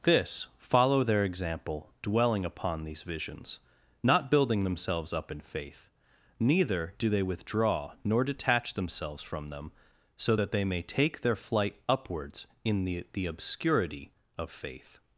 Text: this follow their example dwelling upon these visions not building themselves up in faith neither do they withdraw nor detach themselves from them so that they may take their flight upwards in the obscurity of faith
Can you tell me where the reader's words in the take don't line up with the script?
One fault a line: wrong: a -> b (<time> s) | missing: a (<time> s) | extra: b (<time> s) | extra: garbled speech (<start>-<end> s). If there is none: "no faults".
extra: the (13.1 s)